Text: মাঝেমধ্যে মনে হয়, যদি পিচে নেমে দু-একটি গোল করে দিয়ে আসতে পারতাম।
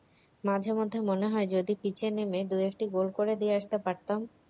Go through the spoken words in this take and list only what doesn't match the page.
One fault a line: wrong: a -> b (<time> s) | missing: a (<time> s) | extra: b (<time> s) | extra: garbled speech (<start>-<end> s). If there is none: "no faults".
no faults